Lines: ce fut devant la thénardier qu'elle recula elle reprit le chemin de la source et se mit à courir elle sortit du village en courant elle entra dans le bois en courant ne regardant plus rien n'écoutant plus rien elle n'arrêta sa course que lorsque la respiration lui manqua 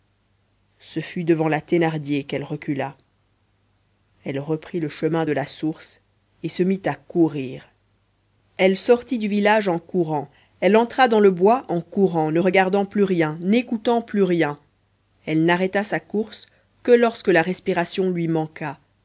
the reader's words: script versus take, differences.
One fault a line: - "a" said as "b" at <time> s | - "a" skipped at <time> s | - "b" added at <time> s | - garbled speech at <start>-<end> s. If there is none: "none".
none